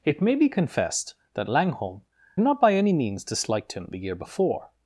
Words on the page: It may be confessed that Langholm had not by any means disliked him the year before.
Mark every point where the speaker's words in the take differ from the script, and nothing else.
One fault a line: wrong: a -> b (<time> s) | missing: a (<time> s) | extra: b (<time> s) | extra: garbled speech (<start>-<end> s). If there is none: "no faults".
missing: had (2.0 s)